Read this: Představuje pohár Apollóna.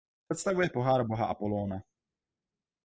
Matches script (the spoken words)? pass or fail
fail